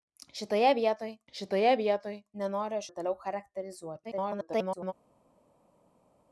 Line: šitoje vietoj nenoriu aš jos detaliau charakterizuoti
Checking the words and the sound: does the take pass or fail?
fail